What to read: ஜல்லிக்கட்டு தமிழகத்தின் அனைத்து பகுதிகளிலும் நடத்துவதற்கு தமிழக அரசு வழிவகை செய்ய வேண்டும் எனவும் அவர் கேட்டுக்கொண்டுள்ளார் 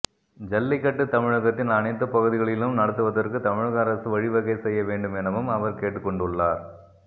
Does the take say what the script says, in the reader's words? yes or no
yes